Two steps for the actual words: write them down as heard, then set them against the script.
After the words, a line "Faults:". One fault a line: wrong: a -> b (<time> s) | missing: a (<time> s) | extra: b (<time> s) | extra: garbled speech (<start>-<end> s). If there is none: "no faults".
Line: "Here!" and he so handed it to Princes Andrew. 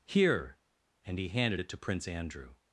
"Here!" and he handed it to Prince Andrew.
Faults:
missing: so (1.3 s)
wrong: Princes -> Prince (1.8 s)